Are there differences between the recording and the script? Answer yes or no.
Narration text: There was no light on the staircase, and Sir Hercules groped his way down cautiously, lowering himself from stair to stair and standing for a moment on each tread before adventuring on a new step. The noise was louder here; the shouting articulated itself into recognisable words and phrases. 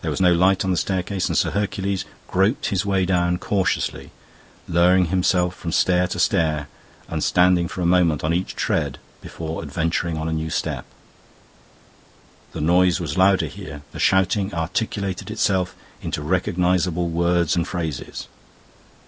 no